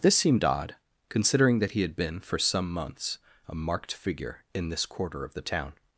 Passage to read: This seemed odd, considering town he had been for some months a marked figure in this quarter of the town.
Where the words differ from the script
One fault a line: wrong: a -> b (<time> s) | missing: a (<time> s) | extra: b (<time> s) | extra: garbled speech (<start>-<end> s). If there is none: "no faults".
wrong: town -> that (1.6 s)